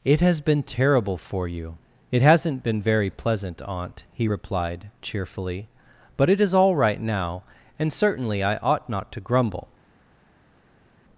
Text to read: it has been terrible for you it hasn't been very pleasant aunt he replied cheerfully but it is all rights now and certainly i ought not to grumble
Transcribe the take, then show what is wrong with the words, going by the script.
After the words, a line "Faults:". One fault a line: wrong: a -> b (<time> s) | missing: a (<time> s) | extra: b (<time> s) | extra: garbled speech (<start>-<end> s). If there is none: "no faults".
it has been terrible for you it hasn't been very pleasant aunt he replied cheerfully but it is all right now and certainly i ought not to grumble
Faults:
wrong: rights -> right (6.7 s)